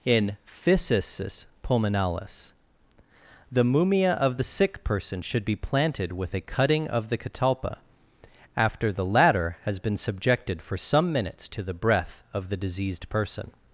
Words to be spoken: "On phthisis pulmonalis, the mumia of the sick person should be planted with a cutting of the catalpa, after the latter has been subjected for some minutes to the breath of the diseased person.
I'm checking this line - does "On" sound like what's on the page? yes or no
no